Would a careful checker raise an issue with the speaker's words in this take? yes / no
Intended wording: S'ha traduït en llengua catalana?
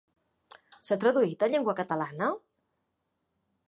no